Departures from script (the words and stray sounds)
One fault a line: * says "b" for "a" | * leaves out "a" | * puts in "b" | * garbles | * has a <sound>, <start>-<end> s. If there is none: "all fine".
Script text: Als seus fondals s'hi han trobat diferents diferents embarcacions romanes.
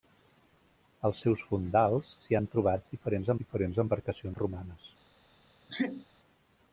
* has a sneeze, 5.7-6.0 s